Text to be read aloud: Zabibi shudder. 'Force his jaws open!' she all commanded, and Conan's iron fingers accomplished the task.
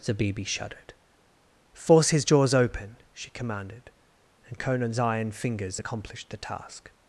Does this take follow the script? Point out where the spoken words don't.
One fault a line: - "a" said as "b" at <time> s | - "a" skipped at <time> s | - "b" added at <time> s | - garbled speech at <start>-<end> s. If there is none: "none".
- "shudder" said as "shuddered" at 0.5 s
- "all" skipped at 3.3 s